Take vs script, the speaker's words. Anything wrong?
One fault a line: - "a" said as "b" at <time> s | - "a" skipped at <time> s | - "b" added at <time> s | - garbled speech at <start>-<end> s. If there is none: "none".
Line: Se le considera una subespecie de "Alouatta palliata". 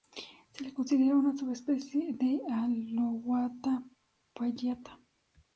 none